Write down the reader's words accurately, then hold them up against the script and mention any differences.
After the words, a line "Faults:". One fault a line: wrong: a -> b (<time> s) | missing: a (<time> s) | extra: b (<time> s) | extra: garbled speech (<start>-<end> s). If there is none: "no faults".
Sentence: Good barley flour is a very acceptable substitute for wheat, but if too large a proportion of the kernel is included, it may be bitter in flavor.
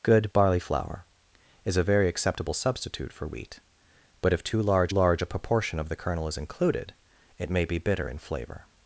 Good barley flour is a very acceptable substitute for wheat, but if too large large a proportion of the kernel is included, it may be bitter in flavor.
Faults:
extra: large (4.9 s)